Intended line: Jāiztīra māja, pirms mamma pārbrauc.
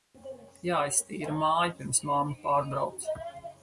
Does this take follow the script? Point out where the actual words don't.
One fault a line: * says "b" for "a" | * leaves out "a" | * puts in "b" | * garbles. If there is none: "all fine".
all fine